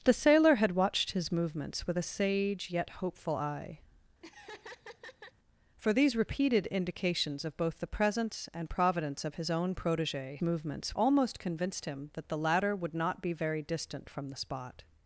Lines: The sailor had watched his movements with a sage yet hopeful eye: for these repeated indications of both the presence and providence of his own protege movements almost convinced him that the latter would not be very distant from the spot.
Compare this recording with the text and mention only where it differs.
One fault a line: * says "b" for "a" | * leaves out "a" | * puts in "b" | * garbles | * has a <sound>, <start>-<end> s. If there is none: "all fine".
* has a laugh, 4.2-5.3 s